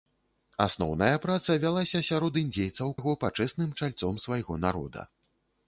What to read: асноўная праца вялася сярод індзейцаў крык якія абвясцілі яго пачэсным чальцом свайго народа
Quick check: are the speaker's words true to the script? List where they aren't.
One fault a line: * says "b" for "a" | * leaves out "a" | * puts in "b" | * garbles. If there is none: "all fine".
* leaves out "крык якія абвясцілі"